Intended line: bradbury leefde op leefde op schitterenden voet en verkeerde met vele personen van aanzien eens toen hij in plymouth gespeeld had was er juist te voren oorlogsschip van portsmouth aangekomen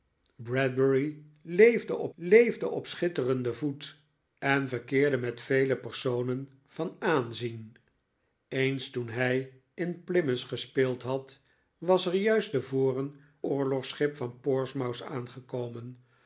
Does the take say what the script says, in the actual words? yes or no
yes